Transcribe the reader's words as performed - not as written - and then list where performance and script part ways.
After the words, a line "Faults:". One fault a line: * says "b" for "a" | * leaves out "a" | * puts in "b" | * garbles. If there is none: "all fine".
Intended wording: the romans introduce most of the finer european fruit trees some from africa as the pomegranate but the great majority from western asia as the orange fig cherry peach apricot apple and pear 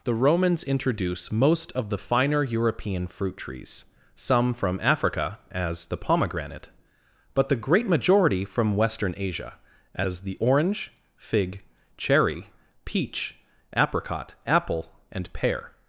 the romans introduce most of the finer european fruit trees some from africa as the pomegranate but the great majority from western asia as the orange fig cherry peach apricot apple and pear
Faults:
all fine